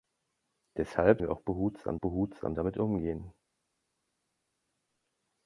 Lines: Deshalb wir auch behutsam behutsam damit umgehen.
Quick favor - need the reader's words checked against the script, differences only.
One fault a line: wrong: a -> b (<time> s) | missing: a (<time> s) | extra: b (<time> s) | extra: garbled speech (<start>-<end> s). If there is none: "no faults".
no faults